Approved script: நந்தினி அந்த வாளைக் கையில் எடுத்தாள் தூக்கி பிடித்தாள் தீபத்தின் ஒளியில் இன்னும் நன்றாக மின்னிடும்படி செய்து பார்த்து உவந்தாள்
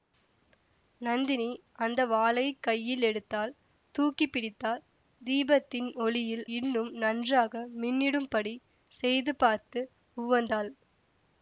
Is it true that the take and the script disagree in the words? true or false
false